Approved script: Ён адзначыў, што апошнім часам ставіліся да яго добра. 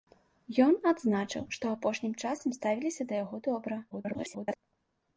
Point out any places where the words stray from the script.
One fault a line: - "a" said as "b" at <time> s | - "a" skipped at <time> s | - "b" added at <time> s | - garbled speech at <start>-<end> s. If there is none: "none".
- garbled speech at 3.9-4.6 s